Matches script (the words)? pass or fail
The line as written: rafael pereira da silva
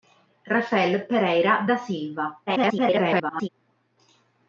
fail